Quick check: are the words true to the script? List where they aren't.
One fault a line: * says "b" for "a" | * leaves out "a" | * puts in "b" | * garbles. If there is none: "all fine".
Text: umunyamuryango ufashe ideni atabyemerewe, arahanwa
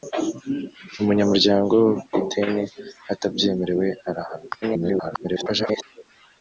* leaves out "ufashe"
* garbles